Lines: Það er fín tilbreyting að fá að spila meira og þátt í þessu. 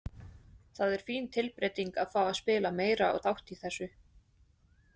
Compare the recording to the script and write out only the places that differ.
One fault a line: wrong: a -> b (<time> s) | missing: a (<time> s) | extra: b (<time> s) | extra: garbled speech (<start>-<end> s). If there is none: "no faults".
no faults